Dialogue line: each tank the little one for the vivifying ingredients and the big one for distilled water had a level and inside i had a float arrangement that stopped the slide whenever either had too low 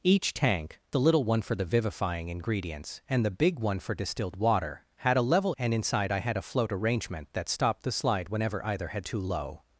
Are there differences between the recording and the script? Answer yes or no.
no